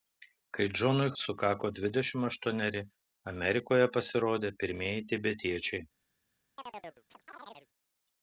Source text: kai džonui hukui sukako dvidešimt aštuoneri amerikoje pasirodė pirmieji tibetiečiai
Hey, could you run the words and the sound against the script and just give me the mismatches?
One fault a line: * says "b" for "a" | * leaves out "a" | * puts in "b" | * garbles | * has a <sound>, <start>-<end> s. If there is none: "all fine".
* leaves out "hukui"
* has a chirp, 6.6-7.7 s